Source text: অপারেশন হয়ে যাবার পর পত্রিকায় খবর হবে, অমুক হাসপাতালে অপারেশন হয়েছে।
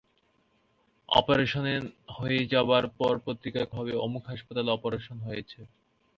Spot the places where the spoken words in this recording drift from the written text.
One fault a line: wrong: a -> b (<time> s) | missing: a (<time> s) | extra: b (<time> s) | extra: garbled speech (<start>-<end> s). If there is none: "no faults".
missing: খবর (3.7 s)